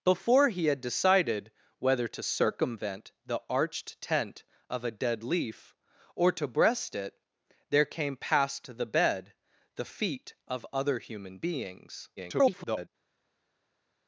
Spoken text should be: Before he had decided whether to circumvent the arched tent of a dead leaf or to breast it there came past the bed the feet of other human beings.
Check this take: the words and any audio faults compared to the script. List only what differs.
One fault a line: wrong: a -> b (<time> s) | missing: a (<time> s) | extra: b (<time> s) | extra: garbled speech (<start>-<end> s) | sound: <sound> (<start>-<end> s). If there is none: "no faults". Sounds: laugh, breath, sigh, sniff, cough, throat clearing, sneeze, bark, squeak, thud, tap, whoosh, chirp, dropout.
extra: garbled speech (12.2-12.9 s)